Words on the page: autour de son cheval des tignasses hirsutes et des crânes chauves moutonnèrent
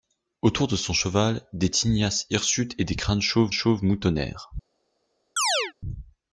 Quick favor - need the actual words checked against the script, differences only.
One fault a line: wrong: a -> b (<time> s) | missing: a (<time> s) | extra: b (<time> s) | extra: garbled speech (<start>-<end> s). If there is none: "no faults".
extra: chauves (3.5 s)